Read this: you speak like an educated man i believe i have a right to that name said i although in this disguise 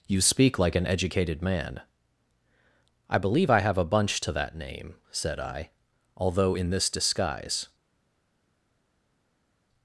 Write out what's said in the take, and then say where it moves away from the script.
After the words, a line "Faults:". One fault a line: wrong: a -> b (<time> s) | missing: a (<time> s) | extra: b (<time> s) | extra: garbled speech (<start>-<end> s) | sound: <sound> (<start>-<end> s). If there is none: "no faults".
you speak like an educated man i believe i have a bunch to that name said i although in this disguise
Faults:
wrong: right -> bunch (3.8 s)